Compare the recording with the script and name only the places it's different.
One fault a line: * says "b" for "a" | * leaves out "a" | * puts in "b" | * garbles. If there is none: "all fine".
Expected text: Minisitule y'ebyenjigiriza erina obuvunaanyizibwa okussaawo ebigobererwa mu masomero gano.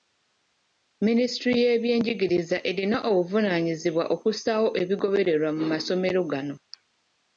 all fine